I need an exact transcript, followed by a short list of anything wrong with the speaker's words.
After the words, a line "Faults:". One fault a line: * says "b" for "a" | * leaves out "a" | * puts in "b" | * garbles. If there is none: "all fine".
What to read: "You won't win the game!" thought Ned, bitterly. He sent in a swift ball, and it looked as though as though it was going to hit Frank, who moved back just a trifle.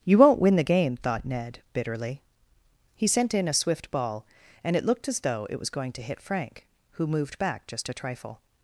"You won't win the game!" thought Ned, bitterly. He sent in a swift ball, and it looked as though it was going to hit Frank, who moved back just a trifle.
Faults:
* leaves out "as though"